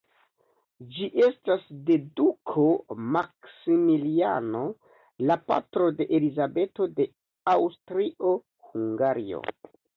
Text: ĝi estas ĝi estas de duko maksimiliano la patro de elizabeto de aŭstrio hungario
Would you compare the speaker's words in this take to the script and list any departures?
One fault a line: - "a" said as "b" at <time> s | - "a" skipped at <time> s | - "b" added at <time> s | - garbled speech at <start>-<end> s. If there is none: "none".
- "ĝi estas" skipped at 1.7 s